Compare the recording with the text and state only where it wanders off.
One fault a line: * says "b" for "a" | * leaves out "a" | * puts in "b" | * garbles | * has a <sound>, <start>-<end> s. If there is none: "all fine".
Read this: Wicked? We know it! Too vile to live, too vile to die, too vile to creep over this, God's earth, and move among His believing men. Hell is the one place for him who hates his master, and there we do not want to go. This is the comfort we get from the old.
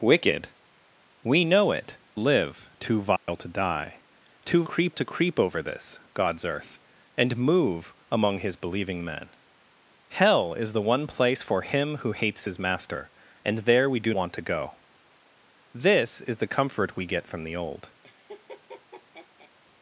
* leaves out "Too vile to"
* has a dropout, 3.2-3.3 s
* says "creep" for "vile"
* leaves out "not"
* has a laugh, 18.0-19.5 s